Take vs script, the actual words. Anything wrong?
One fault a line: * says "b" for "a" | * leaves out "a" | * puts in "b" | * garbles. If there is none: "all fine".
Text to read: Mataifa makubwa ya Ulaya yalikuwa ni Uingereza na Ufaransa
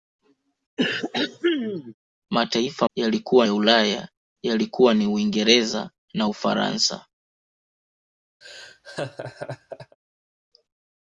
* says "yalikuwa" for "makubwa"